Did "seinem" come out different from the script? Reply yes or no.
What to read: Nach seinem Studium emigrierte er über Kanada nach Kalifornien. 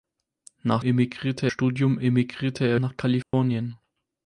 yes